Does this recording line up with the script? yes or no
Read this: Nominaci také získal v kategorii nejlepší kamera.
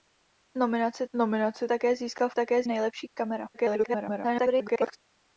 no